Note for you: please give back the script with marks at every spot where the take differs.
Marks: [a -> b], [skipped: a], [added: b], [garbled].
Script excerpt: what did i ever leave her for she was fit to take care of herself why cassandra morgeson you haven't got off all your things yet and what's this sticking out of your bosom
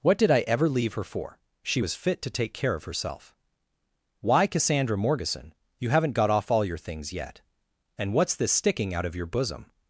what did i ever leave her for she was fit to take care of herself why cassandra morgeson you haven't got off all your things yet and what's this sticking out of your bosom